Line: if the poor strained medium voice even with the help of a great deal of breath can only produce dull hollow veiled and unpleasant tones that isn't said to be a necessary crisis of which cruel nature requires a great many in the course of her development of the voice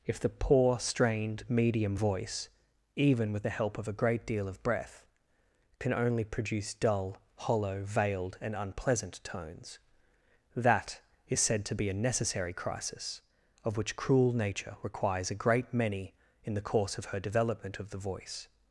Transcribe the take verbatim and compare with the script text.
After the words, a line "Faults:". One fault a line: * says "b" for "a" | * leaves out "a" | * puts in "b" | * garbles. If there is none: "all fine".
if the poor strained medium voice even with the help of a great deal of breath can only produce dull hollow veiled and unpleasant tones that is said to be a necessary crisis of which cruel nature requires a great many in the course of her development of the voice
Faults:
* says "is" for "isn't"